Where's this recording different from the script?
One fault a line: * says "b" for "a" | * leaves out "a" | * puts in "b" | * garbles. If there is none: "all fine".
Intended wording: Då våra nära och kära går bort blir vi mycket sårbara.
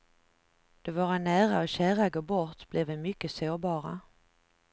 all fine